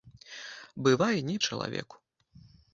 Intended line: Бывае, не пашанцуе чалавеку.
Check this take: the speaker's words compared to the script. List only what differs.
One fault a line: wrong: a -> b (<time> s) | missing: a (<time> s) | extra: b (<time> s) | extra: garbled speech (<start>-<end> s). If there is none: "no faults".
missing: пашанцуе (1.4 s)